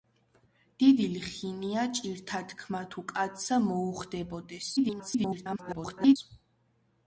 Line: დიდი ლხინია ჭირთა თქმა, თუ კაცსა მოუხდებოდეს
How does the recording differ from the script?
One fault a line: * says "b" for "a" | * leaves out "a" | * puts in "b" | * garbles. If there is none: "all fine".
* garbles